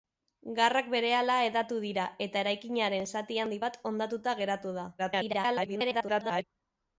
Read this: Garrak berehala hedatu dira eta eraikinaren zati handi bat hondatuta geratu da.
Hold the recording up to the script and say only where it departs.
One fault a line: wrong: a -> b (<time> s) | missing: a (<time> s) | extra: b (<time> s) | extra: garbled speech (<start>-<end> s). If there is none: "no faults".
extra: garbled speech (5.0-6.4 s)